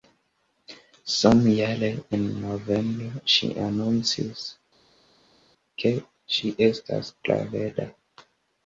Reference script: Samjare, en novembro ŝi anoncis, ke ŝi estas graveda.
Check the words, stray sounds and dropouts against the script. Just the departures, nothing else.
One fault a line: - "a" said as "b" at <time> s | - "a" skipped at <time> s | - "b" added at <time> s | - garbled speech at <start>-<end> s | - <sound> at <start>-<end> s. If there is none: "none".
none